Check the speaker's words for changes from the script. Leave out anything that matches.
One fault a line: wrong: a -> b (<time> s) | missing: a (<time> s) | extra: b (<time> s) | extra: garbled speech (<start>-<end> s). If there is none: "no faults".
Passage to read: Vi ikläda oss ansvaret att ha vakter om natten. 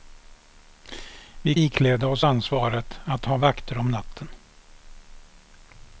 no faults